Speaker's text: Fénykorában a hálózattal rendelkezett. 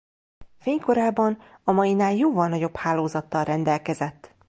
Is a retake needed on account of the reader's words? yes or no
yes